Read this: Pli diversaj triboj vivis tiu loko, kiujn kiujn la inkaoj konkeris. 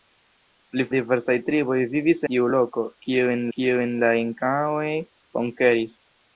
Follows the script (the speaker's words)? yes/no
yes